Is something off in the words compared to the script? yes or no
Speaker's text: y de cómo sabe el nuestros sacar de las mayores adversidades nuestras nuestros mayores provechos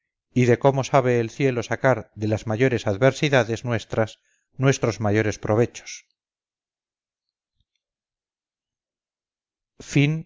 yes